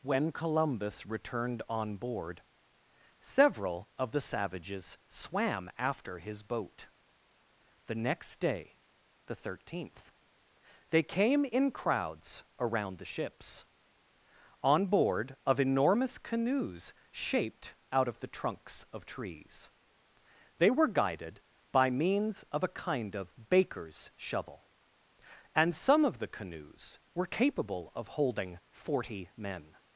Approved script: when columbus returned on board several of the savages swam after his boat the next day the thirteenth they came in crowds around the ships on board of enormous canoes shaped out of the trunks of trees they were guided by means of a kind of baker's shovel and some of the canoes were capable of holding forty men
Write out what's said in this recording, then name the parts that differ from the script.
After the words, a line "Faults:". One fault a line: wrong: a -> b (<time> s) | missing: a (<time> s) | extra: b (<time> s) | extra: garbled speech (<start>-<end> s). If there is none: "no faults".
when columbus returned on board several of the savages swam after his boat the next day the thirteenth they came in crowds around the ships on board of enormous canoes shaped out of the trunks of trees they were guided by means of a kind of baker's shovel and some of the canoes were capable of holding forty men
Faults:
no faults